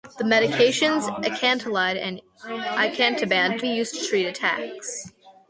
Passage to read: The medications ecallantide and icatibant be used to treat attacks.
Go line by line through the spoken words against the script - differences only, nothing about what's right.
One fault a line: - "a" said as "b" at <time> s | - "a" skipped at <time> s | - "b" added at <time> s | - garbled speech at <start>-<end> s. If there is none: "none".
none